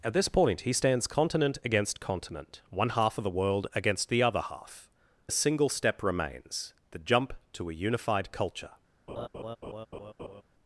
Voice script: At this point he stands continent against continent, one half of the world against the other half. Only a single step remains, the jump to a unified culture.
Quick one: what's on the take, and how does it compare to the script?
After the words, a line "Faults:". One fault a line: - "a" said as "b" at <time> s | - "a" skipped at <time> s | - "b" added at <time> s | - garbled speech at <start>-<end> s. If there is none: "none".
At this point he stands continent against continent, one half of the world against the other half. A single step remains, the jump to a unified culture.
Faults:
- "Only" skipped at 4.9 s